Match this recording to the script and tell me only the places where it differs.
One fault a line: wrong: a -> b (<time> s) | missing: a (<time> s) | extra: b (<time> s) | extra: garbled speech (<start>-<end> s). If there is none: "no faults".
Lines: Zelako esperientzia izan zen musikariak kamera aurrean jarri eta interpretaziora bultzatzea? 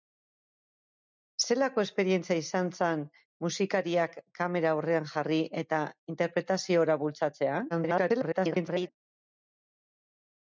extra: garbled speech (7.7-8.9 s)